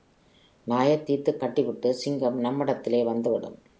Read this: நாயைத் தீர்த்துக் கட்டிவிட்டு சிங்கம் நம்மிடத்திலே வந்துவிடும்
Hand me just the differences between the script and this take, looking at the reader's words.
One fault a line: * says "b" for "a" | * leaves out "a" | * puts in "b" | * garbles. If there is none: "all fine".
all fine